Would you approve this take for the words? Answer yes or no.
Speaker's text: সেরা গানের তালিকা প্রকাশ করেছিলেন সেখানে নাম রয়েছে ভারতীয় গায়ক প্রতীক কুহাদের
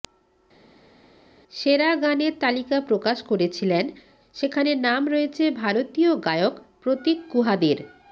yes